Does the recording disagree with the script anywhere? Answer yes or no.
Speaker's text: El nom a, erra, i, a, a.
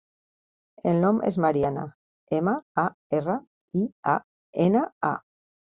yes